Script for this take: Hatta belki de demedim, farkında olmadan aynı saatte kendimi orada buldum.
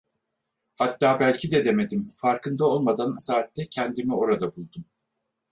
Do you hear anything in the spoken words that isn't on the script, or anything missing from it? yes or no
yes